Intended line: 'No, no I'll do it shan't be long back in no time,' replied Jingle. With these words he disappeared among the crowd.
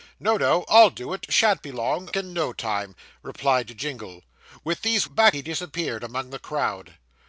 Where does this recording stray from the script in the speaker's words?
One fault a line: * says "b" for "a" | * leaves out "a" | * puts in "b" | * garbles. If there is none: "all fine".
* leaves out "back"
* says "back" for "words"